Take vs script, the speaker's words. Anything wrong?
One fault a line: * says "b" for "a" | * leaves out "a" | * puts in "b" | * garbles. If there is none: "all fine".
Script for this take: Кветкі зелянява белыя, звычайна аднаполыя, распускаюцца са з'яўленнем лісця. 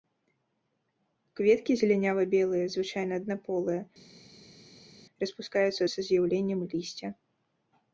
all fine